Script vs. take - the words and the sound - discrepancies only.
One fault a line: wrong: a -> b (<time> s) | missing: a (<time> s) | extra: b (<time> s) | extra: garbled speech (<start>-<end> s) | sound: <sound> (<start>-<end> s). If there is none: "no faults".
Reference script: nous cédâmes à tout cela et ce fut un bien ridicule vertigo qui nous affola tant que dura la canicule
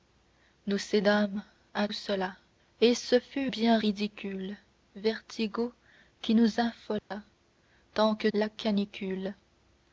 missing: tout (1.9 s)
missing: un (3.5 s)
sound: dropout (7.0-7.1 s)
missing: dura (8.3 s)